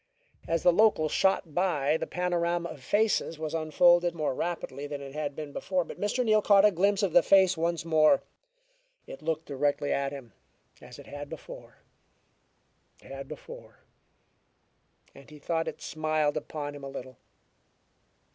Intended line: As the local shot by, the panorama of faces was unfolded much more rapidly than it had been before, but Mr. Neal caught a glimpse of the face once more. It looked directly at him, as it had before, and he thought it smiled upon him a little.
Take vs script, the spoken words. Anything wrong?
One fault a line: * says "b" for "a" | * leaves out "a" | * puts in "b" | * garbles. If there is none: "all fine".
* leaves out "much"
* puts in "had before"